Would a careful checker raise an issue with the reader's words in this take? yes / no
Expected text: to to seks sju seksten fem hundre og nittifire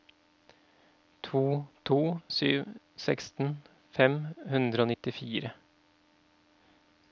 yes